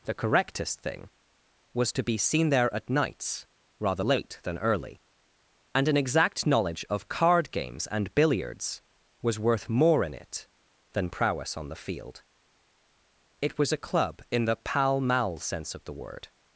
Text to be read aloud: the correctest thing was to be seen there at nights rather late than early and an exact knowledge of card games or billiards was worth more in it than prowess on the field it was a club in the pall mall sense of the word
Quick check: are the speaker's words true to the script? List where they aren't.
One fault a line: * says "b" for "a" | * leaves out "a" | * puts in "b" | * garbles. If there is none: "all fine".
* says "and" for "or"